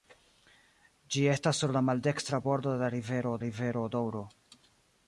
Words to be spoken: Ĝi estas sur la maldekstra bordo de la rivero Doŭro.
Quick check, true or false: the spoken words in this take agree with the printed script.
false